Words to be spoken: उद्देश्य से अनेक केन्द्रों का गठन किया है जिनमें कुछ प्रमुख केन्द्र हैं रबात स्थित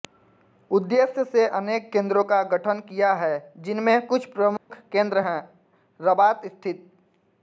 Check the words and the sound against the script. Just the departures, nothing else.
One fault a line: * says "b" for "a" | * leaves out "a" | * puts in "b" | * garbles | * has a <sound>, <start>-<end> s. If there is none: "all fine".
* has a dropout, 4.6-4.7 s